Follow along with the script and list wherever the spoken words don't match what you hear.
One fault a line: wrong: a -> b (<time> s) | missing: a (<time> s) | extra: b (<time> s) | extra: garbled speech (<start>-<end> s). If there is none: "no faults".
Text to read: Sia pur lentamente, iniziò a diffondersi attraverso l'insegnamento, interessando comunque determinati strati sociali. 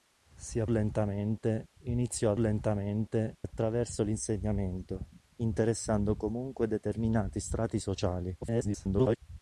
missing: pur (0.7 s)
wrong: diffondersi -> lentamente (2.4 s)
extra: garbled speech (8.4-9.2 s)